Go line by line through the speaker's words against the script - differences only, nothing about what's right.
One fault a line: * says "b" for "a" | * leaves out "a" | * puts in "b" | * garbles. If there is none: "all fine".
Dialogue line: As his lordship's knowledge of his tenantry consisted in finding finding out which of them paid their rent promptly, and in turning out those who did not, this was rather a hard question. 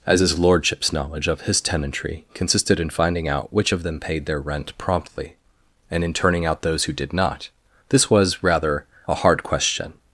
* leaves out "finding"